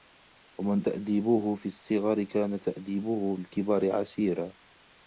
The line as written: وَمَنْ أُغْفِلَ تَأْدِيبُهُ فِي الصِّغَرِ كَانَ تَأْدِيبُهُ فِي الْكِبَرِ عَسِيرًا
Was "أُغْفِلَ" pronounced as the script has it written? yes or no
no